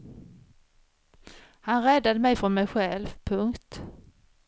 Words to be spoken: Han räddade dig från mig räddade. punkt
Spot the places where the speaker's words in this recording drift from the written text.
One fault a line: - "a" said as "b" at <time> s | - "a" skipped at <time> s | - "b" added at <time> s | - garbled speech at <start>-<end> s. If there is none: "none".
- "dig" said as "mig" at 2.2 s
- "räddade" said as "själv" at 2.7 s